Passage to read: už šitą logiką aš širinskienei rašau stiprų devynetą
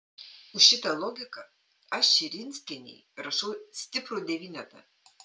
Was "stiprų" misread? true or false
false